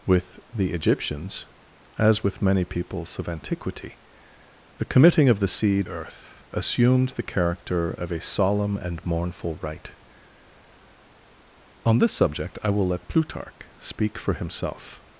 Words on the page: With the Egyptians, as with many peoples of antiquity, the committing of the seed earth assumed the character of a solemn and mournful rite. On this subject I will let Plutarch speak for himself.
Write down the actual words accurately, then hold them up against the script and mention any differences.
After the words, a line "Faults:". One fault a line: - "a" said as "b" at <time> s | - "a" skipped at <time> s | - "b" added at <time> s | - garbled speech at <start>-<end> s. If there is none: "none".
With the Egyptians, as with many peoples of antiquity, the committing of the seed earth assumed the character of a solemn and mournful rite. On this subject I will let Plutarch speak for himself.
Faults:
none